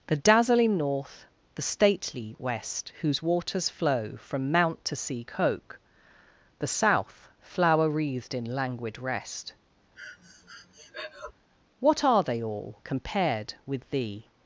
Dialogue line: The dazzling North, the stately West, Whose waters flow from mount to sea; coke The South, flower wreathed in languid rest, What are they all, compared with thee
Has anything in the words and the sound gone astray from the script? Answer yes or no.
yes